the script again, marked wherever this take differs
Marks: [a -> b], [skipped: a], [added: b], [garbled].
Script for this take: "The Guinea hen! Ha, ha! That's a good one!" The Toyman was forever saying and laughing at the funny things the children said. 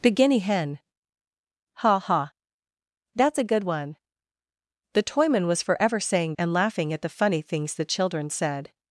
"The Guinea hen! Ha, ha! That's a good one!" The Toyman was forever saying and laughing at the funny things the children said.